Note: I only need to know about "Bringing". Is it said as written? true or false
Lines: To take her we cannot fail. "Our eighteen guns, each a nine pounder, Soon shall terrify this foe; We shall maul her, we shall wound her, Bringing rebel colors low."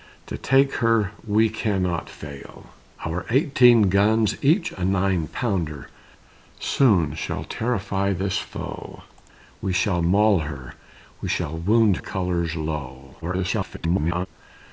false